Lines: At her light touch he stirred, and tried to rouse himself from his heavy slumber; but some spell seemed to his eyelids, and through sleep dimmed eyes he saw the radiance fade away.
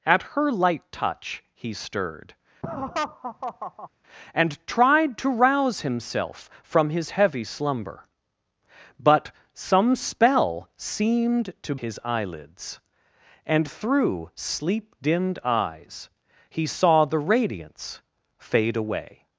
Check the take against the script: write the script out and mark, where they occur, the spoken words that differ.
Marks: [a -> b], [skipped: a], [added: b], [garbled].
At her light touch he stirred, and tried to rouse himself from his heavy slumber; but some spell seemed to his eyelids, and through sleep dimmed eyes he saw the radiance fade away.